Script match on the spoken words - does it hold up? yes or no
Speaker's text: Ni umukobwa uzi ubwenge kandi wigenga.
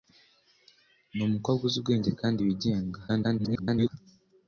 no